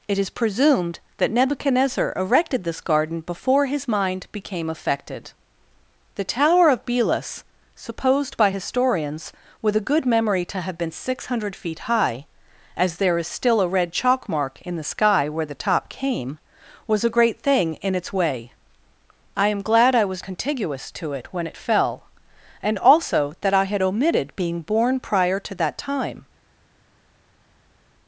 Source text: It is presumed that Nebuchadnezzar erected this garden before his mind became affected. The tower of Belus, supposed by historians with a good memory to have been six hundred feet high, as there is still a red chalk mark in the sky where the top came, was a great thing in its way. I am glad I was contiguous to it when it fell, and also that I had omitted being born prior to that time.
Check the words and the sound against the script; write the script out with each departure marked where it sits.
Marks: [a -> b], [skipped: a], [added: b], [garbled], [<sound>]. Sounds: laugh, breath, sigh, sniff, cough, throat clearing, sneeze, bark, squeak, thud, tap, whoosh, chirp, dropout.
It is presumed that Nebuchadnezzar erected this garden before his mind became affected. The tower of Belus, supposed by historians with a good memory to have been six hundred feet high, as there is still a red chalk mark in the sky where the top came, was a great thing in its way. I am glad I was contiguous to it when it fell, and also that I had omitted being born prior to that time.